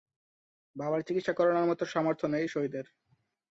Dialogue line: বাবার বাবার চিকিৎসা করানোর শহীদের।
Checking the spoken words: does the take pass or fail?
fail